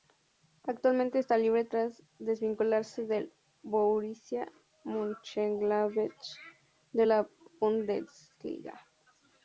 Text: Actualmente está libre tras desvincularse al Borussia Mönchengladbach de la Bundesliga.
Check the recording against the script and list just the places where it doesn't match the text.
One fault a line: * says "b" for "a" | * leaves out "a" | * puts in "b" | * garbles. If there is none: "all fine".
* says "del" for "al"